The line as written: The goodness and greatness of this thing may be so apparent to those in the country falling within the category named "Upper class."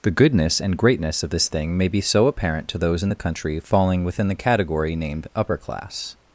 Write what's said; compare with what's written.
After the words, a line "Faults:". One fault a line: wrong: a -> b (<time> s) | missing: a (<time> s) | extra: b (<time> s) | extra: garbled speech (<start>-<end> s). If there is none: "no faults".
The goodness and greatness of this thing may be so apparent to those in the country falling within the category named "Upper class."
Faults:
no faults